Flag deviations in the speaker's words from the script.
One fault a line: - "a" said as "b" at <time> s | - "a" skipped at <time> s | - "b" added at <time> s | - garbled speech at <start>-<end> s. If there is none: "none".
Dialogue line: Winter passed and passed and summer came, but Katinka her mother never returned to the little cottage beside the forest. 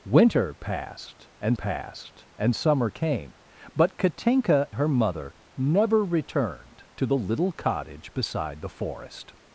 none